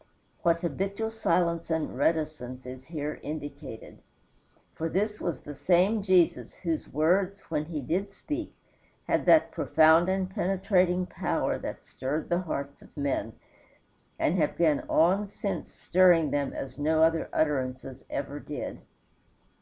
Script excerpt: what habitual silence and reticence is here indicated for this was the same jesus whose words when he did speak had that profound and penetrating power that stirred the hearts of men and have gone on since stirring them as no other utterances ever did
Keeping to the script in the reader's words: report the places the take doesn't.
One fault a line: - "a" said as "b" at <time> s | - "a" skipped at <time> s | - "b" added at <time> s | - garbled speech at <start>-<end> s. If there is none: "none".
none